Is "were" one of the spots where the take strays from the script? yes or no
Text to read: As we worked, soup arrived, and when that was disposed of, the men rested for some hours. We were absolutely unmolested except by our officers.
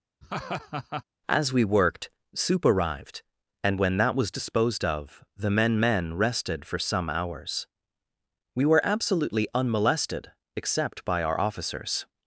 no